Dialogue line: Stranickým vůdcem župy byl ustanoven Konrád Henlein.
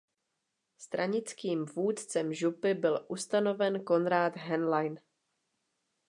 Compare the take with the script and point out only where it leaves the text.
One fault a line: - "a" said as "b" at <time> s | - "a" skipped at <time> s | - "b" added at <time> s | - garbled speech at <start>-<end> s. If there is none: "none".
none